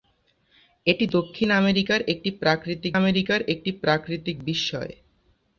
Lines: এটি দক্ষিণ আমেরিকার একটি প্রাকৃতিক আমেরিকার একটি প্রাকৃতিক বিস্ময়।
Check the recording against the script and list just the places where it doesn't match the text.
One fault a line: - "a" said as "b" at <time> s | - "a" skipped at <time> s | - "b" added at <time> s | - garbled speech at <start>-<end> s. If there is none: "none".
none